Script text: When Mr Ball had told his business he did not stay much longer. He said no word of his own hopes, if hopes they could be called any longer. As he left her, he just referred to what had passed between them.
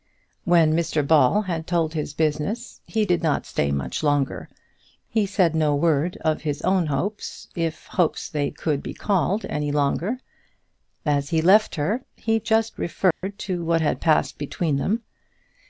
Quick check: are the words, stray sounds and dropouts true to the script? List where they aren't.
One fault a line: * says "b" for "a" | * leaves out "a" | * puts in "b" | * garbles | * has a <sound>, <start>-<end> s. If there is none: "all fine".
* has a dropout, 13.1-13.2 s